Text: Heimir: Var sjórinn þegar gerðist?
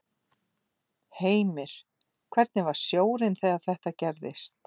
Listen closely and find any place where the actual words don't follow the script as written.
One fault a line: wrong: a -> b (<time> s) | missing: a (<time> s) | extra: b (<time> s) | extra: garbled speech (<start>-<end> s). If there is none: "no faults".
extra: Hvernig (2.4 s)
extra: þetta (3.7 s)